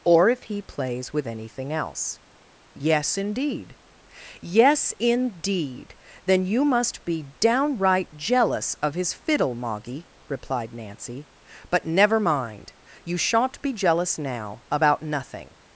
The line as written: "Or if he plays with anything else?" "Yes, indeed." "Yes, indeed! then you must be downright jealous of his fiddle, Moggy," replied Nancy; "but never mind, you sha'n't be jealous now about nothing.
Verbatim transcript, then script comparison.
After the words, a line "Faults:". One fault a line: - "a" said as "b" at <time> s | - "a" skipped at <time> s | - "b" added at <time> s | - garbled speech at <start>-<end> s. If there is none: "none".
"Or if he plays with anything else?" "Yes, indeed." "Yes, indeed! then you must be downright jealous of his fiddle, Moggy," replied Nancy; "but never mind, you sha'n't be jealous now about nothing.
Faults:
none